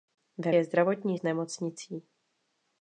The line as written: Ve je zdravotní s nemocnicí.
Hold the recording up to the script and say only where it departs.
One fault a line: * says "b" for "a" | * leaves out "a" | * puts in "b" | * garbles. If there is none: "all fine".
all fine